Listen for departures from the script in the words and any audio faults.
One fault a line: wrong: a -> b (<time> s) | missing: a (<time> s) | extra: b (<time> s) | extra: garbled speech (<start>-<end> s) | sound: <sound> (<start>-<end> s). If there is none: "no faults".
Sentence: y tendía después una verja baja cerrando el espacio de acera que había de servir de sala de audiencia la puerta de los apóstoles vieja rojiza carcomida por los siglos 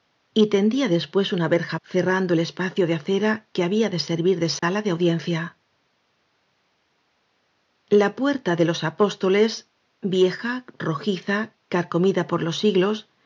missing: baja (1.8 s)
sound: dropout (4.6-4.6 s)